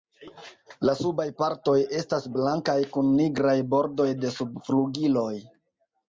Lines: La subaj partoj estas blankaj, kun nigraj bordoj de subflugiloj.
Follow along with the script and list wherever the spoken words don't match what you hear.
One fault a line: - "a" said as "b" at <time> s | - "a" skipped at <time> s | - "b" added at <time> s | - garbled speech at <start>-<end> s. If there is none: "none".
none